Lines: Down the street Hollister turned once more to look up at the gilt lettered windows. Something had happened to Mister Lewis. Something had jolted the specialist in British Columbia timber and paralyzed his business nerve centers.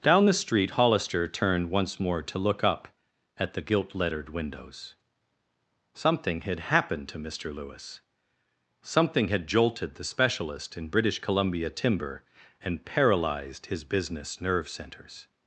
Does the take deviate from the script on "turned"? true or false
false